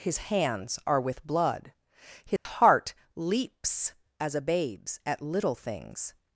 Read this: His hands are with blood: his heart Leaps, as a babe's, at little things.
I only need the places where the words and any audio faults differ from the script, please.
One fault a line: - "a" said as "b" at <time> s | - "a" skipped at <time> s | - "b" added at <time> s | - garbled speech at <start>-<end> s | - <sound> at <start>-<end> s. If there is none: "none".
- dropout at 2.4-2.5 s